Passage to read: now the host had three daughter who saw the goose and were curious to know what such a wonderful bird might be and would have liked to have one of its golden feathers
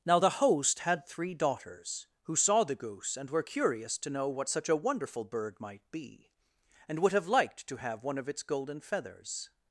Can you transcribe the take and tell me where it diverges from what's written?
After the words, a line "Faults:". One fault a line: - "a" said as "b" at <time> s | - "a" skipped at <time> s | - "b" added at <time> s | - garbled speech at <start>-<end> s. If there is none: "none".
now the host had three daughters who saw the goose and were curious to know what such a wonderful bird might be and would have liked to have one of its golden feathers
Faults:
- "daughter" said as "daughters" at 1.3 s